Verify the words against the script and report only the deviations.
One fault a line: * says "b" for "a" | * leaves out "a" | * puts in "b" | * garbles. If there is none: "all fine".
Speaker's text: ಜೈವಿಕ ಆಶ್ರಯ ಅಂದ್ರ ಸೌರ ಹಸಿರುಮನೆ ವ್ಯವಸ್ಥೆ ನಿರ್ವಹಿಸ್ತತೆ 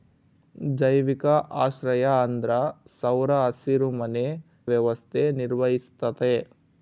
all fine